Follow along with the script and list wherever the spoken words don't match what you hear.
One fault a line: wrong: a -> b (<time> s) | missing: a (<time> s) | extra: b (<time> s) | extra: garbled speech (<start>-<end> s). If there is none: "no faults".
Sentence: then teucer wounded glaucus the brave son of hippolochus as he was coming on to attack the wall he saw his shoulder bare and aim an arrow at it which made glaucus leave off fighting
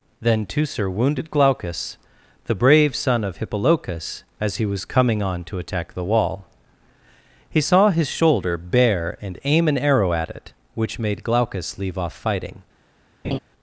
no faults